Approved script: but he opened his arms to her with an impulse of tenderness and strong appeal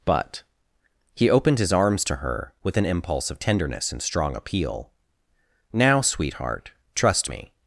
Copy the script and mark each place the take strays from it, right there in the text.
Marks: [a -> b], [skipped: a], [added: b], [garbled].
but he opened his arms to her with an impulse of tenderness and strong appeal [added: now sweetheart trust me]